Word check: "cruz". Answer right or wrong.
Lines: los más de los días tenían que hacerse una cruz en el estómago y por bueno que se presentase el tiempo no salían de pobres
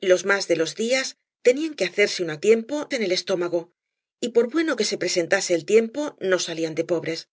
wrong